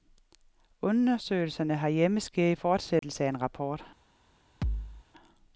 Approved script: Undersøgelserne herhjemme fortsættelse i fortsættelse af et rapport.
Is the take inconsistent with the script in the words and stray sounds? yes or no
yes